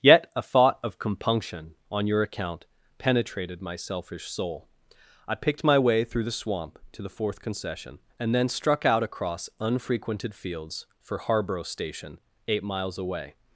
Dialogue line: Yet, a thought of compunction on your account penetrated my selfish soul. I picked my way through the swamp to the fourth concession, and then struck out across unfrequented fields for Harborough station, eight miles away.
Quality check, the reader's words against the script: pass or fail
pass